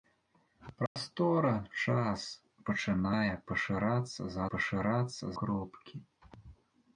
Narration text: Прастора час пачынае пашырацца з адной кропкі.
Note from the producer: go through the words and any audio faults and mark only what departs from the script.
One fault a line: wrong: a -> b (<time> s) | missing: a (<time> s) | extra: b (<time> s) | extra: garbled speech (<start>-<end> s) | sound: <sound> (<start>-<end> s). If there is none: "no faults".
sound: dropout (0.9-1.0 s)
wrong: адной -> пашырацца (4.5 s)